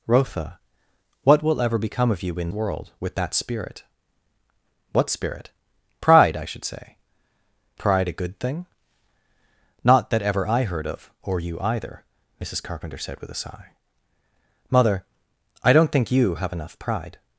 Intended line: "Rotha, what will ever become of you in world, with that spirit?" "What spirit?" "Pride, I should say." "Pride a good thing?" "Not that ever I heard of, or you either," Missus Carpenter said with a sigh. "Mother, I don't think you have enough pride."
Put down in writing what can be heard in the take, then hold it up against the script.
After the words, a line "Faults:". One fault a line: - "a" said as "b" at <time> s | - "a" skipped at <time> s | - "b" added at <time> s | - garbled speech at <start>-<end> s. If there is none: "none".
"Rotha, what will ever become of you in world, with that spirit?" "What spirit?" "Pride, I should say." "Pride a good thing?" "Not that ever I heard of, or you either," Missus Carpenter said with a sigh. "Mother, I don't think you have enough pride."
Faults:
none